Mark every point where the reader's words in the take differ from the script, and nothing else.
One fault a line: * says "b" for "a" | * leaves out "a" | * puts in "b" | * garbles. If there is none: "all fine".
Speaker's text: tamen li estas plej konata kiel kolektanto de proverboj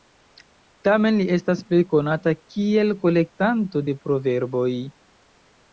all fine